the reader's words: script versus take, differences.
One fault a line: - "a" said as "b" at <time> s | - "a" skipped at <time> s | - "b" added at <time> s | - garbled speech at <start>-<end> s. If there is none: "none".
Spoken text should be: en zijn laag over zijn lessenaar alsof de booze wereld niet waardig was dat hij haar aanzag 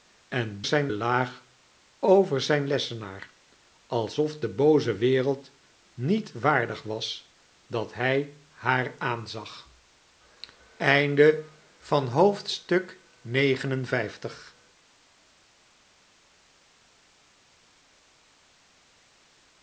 none